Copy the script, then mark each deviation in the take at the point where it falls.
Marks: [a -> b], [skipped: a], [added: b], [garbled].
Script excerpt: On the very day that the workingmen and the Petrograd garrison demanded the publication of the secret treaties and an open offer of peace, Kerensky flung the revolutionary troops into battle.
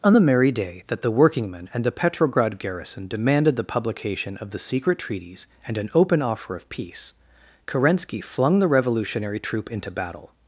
On the [very -> merry] day that the workingmen and the Petrograd garrison demanded the publication of the secret treaties and an open offer of peace, Kerensky flung the revolutionary [troops -> troop] into battle.